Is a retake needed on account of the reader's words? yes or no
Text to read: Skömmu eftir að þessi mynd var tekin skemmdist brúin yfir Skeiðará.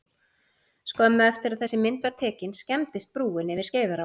no